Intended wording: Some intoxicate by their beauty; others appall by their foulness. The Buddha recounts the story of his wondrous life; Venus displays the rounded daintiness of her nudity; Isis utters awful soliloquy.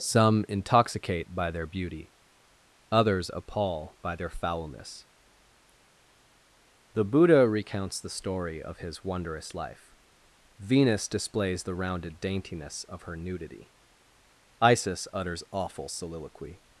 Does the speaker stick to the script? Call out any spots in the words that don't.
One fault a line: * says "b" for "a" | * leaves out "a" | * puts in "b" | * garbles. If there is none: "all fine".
all fine